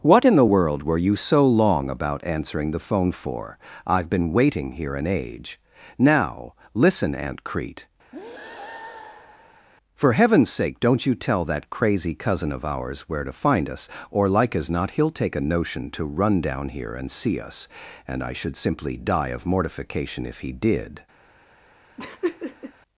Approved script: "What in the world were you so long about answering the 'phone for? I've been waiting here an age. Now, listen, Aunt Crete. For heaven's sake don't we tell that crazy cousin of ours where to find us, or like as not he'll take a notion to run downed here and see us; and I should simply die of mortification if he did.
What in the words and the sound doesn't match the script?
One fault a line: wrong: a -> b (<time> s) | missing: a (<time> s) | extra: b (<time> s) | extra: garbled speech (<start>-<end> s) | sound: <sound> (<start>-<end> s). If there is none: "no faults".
sound: breath (8.1-9.7 s)
wrong: we -> you (11.0 s)
wrong: downed -> down (16.4 s)
sound: laugh (22.0-22.7 s)